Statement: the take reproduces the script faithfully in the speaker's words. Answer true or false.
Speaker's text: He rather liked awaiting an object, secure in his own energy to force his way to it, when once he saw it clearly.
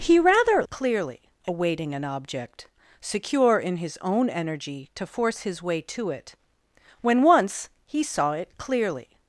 false